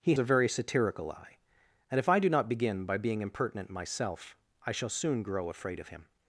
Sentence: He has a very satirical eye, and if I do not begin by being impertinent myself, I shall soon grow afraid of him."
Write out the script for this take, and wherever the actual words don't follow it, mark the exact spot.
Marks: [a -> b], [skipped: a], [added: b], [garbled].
He [skipped: has] a very satirical eye, and if I do not begin by being impertinent myself, I shall soon grow afraid of him."